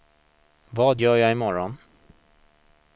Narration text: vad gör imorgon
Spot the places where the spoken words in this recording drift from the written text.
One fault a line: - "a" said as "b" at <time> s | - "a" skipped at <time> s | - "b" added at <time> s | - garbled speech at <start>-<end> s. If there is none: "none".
- "jag" added at 1.2 s